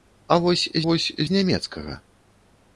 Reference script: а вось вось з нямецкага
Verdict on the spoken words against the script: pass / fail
pass